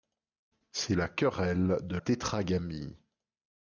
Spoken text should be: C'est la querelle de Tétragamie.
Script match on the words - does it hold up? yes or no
yes